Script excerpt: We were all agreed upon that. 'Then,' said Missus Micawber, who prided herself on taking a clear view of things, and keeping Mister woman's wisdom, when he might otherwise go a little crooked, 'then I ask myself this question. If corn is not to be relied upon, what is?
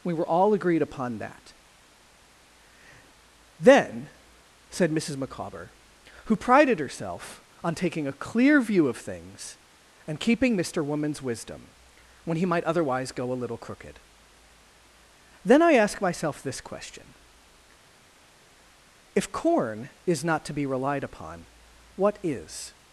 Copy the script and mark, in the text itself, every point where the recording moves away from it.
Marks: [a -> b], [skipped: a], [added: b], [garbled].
We were all agreed upon that. 'Then,' said Missus Micawber, who prided herself on taking a clear view of things, and keeping Mister woman's wisdom, when he might otherwise go a little crooked, 'then I ask myself this question. If corn is not to be relied upon, what is?